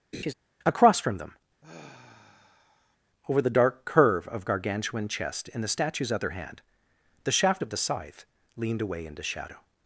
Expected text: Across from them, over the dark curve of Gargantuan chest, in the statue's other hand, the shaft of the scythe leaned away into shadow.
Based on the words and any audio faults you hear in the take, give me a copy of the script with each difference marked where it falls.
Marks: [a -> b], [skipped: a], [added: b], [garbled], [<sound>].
[laugh] Across from them, [sigh] over the dark curve of Gargantuan chest, in the statue's other hand, the shaft of the scythe leaned away into shadow.